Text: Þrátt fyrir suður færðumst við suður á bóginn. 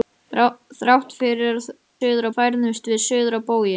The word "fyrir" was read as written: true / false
true